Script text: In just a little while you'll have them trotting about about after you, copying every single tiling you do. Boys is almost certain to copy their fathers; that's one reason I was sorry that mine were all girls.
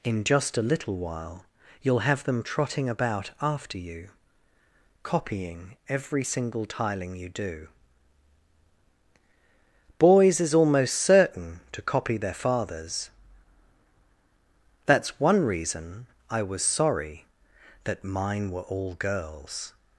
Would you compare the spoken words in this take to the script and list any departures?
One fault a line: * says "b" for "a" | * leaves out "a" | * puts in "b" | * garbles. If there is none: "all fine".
* leaves out "about"